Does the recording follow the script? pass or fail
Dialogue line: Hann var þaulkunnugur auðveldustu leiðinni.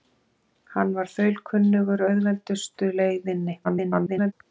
fail